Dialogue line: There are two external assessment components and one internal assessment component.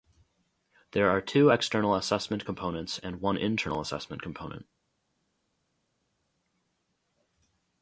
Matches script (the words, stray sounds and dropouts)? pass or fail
pass